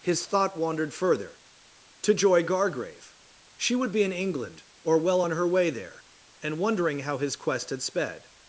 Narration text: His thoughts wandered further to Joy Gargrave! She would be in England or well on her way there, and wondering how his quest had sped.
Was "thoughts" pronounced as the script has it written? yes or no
no